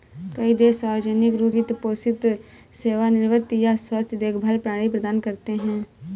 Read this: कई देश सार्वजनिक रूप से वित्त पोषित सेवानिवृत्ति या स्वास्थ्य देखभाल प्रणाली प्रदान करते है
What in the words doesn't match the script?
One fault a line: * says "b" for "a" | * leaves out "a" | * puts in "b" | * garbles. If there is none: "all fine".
* leaves out "से"